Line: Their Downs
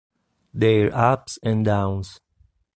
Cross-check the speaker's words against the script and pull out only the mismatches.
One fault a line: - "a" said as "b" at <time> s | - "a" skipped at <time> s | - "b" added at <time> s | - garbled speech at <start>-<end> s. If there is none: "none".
- "Ups and" added at 0.9 s